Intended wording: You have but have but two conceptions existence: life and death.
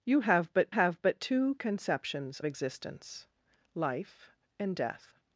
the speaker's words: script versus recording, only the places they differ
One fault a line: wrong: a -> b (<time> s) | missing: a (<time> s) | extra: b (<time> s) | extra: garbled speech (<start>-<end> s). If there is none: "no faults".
no faults